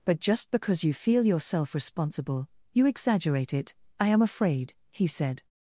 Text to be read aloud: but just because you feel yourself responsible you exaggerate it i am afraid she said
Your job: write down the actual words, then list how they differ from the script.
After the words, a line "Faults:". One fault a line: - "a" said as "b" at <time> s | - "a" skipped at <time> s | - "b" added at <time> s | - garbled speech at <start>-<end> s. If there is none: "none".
but just because you feel yourself responsible you exaggerate it i am afraid he said
Faults:
- "she" said as "he" at 4.9 s